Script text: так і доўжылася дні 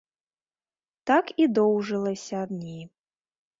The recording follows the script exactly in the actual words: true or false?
true